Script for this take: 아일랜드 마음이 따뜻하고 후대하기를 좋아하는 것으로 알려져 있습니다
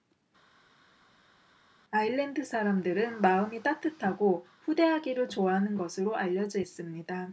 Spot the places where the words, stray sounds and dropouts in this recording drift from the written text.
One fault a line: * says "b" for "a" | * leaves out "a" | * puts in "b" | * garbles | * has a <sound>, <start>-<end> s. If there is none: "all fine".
* puts in "사람들은"